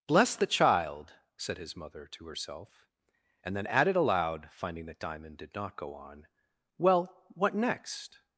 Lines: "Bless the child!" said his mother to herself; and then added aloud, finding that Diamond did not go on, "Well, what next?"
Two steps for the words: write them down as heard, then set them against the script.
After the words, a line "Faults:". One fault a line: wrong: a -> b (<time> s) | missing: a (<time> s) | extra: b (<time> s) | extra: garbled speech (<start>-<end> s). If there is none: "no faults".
"Bless the child!" said his mother to herself; and then added aloud, finding that Diamond did not go on, "Well, what next?"
Faults:
no faults